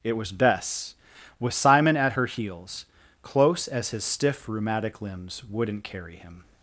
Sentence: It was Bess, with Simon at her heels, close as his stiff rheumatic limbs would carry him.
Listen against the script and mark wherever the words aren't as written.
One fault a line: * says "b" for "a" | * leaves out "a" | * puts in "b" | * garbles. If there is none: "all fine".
* says "wouldn't" for "would"